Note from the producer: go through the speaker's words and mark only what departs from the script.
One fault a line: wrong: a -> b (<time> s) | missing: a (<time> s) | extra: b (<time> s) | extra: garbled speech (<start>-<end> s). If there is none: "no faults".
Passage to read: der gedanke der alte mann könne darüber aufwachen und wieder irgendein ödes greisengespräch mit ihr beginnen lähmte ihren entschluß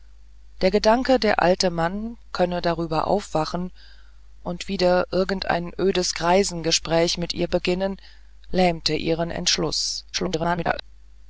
extra: garbled speech (10.1-10.8 s)